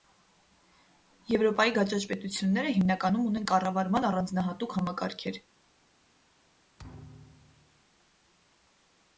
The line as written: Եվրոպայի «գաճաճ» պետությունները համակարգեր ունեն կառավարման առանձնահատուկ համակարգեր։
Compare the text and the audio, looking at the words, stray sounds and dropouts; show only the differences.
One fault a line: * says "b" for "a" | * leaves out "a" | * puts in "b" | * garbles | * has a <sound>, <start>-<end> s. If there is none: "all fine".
* says "հիմնականում" for "համակարգեր"
* has a thud, 6.8-7.8 s